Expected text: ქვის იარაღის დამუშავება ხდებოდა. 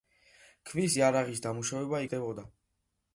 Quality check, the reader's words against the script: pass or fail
pass